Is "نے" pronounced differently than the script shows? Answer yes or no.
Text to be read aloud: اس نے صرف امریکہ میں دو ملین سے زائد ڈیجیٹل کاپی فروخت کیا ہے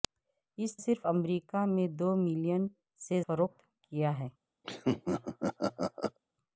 yes